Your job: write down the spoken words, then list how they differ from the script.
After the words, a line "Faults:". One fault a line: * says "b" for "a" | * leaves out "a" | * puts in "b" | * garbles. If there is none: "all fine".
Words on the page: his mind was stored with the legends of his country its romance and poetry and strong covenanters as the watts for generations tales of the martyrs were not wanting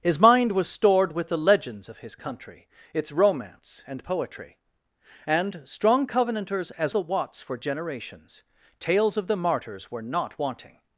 his mind was stored with the legends of his country its romance and poetry and strong covenanters as the watts for generations tales of the martyrs were not wanting
Faults:
all fine